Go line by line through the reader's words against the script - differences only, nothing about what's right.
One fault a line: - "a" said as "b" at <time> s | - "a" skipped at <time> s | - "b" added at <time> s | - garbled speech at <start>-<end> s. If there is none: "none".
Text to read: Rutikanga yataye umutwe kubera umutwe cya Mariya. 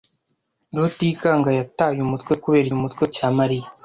none